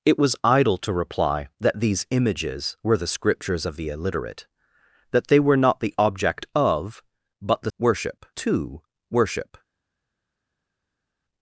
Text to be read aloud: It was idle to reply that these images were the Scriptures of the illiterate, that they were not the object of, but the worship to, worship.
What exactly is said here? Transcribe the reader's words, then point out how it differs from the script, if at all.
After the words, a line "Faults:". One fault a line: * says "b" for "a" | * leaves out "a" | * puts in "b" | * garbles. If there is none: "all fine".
It was idle to reply that these images were the Scriptures of the illiterate, that they were not the object of, but the worship to, worship.
Faults:
all fine